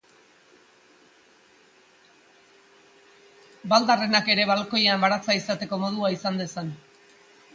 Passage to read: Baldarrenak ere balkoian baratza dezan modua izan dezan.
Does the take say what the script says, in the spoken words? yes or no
no